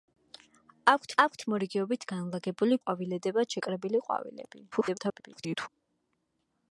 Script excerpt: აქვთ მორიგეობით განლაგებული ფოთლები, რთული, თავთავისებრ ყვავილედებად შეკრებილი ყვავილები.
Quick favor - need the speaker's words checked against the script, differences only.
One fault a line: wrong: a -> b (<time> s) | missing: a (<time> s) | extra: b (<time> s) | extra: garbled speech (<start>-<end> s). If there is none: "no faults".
extra: აქვთ (1.2 s)
missing: ფოთლები რთული თავთავისებრ (2.8 s)
extra: garbled speech (4.7-5.7 s)